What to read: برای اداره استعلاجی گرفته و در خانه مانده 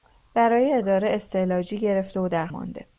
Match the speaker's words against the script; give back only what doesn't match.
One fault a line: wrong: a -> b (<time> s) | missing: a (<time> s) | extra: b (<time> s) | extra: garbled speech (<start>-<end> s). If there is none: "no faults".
missing: خانه (2.5 s)